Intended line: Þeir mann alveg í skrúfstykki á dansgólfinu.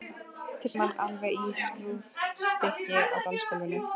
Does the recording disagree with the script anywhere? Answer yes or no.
no